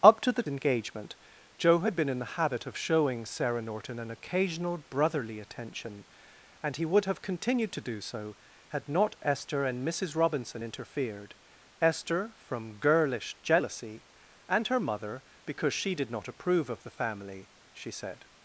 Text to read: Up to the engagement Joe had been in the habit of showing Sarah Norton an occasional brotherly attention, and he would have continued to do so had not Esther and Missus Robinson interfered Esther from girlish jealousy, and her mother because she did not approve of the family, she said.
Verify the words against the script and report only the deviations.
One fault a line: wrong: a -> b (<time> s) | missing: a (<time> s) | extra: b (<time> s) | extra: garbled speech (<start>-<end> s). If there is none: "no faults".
no faults